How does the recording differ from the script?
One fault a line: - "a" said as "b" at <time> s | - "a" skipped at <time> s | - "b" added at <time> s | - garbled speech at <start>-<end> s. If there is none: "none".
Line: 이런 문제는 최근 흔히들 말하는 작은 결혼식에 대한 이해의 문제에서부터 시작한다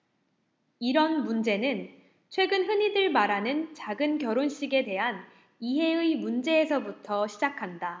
none